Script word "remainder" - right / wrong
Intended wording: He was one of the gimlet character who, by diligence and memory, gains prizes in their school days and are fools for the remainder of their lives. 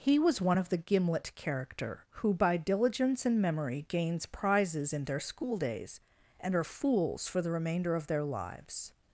right